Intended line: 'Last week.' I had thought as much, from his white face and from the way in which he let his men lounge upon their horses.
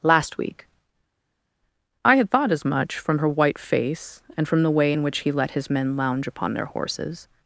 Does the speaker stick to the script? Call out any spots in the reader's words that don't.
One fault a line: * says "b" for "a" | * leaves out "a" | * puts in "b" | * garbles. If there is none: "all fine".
* says "her" for "his"